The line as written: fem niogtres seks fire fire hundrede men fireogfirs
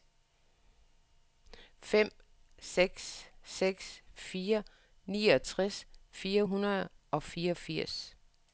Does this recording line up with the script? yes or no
no